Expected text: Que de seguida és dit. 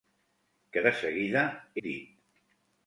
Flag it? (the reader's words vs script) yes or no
yes